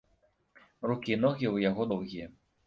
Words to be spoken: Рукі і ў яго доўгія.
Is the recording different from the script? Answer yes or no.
yes